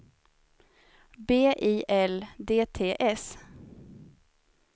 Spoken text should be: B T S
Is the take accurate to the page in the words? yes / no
no